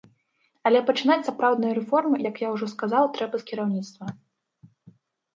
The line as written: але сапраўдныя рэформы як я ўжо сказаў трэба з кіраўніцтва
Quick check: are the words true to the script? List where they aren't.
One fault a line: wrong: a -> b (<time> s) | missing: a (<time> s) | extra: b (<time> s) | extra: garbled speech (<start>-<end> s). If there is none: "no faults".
extra: пачынаць (0.8 s)